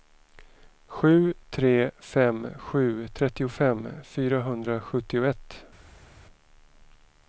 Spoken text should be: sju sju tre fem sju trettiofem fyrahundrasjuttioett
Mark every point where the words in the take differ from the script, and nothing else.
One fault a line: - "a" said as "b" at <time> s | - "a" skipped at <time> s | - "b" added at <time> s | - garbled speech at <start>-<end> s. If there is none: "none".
- "sju" skipped at 1.3 s